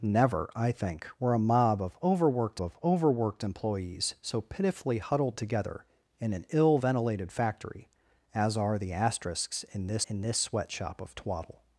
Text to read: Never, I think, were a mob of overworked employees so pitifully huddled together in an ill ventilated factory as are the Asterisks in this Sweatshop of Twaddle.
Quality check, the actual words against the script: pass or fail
fail